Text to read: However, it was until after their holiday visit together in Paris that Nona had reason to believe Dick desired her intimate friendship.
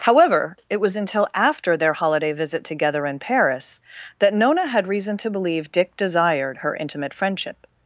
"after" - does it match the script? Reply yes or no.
yes